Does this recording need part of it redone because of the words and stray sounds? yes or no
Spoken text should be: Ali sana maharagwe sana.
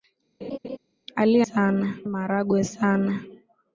yes